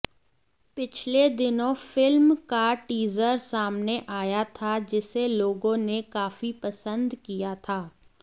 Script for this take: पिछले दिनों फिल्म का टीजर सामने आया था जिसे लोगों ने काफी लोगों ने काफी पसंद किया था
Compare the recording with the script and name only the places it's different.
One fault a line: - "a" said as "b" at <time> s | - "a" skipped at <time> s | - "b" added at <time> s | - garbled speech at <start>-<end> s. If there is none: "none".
- "लोगों ने काफी" skipped at 6.5 s